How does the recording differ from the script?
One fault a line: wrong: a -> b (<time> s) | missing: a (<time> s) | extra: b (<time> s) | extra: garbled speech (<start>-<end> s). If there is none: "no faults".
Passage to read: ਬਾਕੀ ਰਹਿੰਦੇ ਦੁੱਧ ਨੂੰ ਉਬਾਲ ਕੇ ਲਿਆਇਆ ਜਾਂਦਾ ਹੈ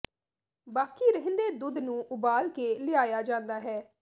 no faults